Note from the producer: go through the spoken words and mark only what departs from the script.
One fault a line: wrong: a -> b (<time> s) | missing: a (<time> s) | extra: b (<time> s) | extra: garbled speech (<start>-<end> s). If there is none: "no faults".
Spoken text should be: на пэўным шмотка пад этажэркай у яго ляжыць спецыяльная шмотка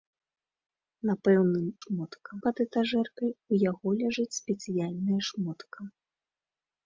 no faults